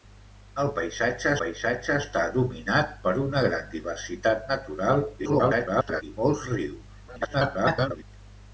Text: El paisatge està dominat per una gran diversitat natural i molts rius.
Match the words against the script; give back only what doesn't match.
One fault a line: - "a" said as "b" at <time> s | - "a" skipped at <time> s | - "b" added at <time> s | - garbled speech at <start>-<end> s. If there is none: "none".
- "paisatge" added at 1.4 s
- garbled speech at 5.2-6.0 s
- garbled speech at 7.1-8.0 s